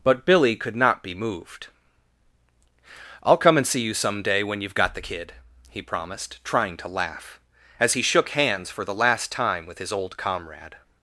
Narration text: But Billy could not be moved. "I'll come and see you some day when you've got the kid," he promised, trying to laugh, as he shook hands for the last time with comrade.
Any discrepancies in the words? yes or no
yes